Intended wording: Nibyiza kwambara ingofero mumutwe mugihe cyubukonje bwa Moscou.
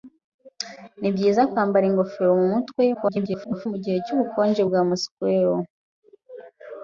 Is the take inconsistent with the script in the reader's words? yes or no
yes